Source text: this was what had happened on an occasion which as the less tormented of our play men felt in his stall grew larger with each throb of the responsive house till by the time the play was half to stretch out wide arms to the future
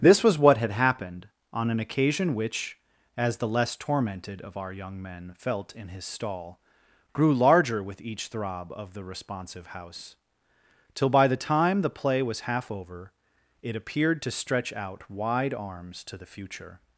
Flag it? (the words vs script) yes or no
yes